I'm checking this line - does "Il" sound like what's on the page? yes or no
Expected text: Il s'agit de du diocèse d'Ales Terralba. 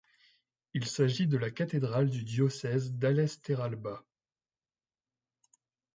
yes